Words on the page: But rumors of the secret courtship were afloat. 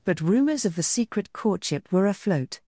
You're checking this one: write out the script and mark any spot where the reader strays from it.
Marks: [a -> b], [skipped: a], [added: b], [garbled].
But rumors of the secret courtship were afloat.